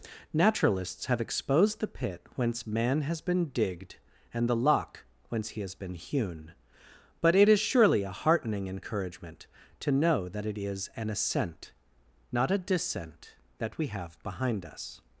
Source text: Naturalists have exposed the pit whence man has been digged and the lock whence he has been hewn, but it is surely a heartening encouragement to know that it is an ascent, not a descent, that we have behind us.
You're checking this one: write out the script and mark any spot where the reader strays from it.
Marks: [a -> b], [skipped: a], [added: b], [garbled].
Naturalists have exposed the pit whence man has been digged and the lock whence he has been hewn, but it is surely a heartening encouragement to know that it is an ascent, not a descent, that we have behind us.